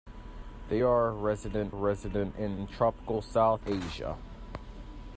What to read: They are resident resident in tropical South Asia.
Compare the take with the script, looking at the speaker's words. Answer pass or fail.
pass